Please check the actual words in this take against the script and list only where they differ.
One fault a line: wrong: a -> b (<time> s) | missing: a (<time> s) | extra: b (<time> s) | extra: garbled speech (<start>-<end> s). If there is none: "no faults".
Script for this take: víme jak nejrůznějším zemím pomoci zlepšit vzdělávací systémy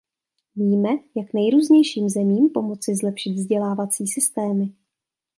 no faults